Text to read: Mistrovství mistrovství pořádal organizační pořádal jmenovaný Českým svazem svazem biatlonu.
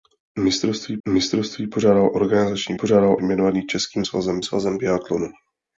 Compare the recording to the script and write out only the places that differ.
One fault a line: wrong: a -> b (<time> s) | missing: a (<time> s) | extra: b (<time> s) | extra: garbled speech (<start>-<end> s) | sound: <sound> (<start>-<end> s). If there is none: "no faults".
no faults